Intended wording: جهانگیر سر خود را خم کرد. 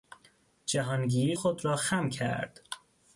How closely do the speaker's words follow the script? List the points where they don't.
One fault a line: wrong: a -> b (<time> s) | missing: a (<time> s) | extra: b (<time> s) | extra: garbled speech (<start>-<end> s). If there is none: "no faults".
missing: سر (1.4 s)